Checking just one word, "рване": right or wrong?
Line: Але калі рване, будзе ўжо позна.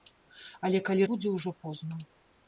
wrong